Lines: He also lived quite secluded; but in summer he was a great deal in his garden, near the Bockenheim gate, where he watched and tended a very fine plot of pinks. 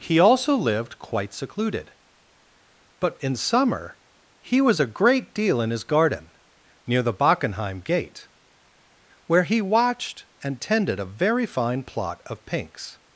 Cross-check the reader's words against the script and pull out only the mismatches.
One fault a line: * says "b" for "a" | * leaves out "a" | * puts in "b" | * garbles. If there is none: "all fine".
all fine